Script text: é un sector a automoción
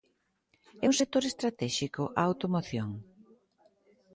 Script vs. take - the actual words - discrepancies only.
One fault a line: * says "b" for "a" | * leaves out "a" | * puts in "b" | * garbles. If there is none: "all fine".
* puts in "estratéxico"